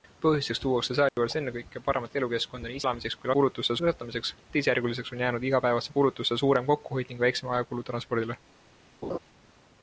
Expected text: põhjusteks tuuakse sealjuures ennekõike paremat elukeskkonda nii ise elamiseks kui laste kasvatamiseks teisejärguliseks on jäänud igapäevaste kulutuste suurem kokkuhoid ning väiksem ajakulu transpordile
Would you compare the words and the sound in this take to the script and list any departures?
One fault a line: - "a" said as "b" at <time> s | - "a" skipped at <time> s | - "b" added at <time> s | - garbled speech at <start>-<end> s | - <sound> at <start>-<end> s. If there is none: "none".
- dropout at 1.1-1.2 s
- "ise" skipped at 2.8 s
- "laste" said as "kulutuste" at 3.4 s
- laugh at 9.0-9.2 s